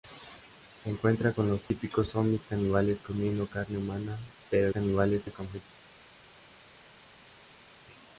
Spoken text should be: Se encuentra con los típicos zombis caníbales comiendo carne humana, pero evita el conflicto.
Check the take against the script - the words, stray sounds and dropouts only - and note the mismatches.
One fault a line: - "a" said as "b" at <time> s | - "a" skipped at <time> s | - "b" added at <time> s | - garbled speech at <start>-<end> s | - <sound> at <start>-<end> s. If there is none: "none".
- "evita" said as "caníbales" at 4.7 s